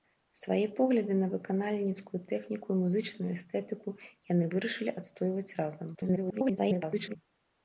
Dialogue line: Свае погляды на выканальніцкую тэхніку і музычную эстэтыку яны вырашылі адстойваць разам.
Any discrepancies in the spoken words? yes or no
yes